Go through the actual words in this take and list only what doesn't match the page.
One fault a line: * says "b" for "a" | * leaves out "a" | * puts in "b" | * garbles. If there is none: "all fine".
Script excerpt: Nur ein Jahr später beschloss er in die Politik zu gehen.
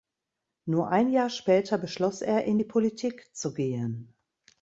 all fine